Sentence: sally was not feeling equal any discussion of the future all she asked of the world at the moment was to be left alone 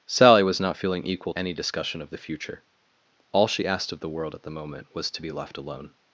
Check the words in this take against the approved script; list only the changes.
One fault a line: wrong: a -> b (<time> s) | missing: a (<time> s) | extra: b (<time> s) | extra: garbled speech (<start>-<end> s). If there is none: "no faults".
no faults